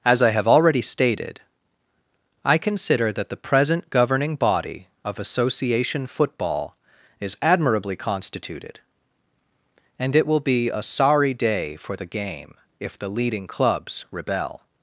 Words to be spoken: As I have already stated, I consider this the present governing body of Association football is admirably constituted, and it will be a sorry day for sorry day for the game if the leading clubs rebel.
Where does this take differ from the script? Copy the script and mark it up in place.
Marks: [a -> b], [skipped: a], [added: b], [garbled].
As I have already stated, I consider [this -> that] the present governing body of Association football is admirably constituted, and it will be a sorry day for [skipped: sorry day for] the game if the leading clubs rebel.